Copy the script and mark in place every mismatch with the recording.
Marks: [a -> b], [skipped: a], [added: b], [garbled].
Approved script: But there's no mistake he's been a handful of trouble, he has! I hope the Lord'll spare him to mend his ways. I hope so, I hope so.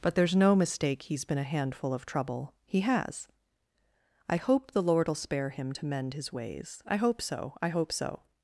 But there's no mistake he's been a handful of trouble, he has! I hope the Lord'll spare him to mend his ways. I hope so, I hope so.